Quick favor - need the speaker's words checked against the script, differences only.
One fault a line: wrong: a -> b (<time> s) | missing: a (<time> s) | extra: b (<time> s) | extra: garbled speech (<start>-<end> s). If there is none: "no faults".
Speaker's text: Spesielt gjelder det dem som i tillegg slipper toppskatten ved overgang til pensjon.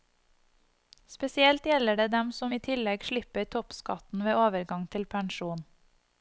no faults